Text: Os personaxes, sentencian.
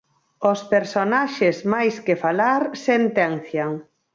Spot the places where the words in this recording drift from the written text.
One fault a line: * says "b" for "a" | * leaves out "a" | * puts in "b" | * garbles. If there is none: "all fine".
* puts in "máis que falar"